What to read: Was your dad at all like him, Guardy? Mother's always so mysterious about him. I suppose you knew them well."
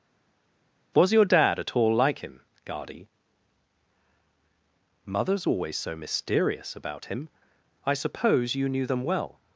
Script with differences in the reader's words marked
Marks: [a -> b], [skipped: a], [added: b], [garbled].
Was your dad at all like him, Guardy? Mother's always so mysterious about him. I suppose you knew them well."